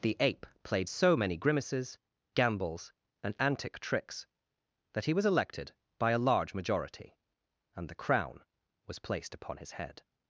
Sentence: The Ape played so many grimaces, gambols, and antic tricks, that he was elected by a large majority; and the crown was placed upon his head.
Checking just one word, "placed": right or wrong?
right